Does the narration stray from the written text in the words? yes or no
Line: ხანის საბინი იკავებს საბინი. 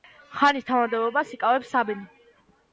yes